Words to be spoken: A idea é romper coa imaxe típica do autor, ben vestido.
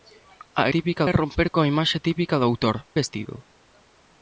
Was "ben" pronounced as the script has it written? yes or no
no